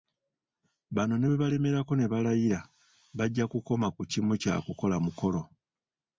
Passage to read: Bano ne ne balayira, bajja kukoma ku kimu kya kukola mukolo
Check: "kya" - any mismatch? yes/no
no